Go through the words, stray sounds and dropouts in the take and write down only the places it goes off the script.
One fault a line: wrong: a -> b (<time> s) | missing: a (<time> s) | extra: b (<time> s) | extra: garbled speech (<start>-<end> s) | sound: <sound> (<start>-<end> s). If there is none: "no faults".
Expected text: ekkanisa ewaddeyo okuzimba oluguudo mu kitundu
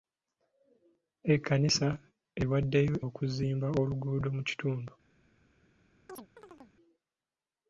sound: chirp (6.1-6.8 s)